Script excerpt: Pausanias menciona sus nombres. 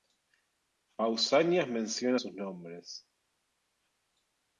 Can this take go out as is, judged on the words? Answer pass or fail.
pass